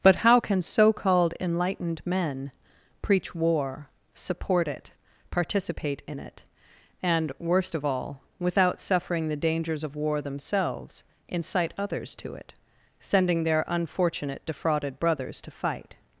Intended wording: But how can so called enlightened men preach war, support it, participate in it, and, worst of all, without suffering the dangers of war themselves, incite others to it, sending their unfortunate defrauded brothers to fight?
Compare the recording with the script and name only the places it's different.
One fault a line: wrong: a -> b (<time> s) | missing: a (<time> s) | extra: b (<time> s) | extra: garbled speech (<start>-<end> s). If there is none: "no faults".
no faults